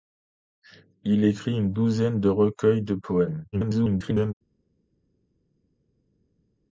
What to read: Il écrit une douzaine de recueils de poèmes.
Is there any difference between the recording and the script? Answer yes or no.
yes